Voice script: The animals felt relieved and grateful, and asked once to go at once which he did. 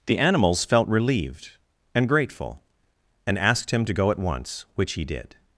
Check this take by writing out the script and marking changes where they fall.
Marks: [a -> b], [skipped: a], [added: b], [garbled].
The animals felt relieved and grateful, and asked [once -> him] to go at once which he did.